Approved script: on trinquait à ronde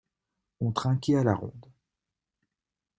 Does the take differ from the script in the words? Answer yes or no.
yes